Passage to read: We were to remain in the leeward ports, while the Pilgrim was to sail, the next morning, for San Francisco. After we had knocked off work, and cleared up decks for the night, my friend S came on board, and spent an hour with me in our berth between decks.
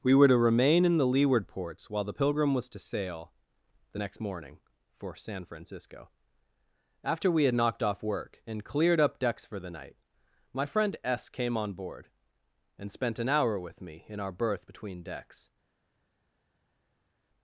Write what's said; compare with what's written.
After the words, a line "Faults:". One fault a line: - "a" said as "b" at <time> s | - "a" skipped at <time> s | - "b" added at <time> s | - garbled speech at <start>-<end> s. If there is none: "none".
We were to remain in the leeward ports, while the Pilgrim was to sail, the next morning, for San Francisco. After we had knocked off work, and cleared up decks for the night, my friend S came on board, and spent an hour with me in our berth between decks.
Faults:
none